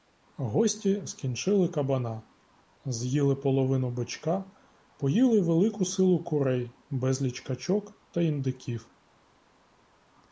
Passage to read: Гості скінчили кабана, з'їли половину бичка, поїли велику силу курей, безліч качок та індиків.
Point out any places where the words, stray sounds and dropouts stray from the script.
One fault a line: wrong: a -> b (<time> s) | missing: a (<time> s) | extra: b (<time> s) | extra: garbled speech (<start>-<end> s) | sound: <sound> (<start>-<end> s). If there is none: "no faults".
no faults